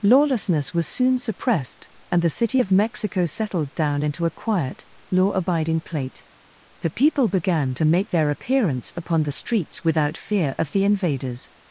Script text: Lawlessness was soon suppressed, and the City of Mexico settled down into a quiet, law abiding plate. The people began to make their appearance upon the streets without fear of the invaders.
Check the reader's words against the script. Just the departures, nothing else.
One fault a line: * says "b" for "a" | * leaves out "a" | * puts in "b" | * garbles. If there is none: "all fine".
all fine